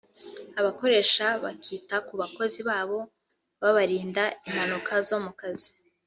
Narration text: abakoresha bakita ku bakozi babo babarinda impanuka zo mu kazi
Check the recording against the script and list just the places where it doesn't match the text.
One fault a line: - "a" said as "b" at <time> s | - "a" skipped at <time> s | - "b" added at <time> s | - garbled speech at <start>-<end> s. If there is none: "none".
none